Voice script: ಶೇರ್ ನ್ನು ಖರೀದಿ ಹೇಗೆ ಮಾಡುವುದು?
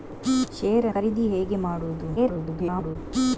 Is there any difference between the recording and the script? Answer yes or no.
yes